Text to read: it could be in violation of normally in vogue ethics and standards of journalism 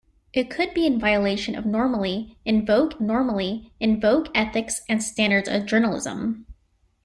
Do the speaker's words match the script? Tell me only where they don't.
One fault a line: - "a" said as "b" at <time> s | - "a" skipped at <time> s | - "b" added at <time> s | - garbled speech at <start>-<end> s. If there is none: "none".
- "normally in vogue" added at 3.0 s